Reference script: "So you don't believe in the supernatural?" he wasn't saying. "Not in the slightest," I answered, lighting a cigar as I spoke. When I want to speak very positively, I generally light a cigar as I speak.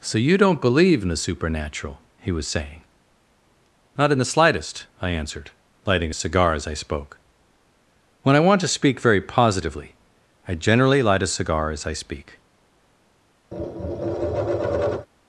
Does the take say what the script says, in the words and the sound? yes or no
no